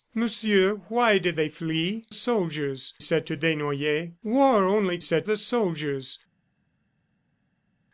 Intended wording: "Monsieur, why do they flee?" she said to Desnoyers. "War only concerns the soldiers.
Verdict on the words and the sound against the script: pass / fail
fail